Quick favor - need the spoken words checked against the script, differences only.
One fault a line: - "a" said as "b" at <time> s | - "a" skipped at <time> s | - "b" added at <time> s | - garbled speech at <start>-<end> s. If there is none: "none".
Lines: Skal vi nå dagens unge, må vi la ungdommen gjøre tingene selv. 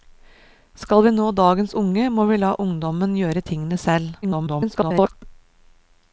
- garbled speech at 4.2-5.1 s